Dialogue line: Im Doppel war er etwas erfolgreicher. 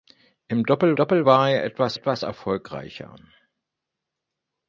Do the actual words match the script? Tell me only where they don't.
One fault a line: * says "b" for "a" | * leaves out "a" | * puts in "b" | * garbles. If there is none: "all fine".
* puts in "Doppel"
* puts in "etwas"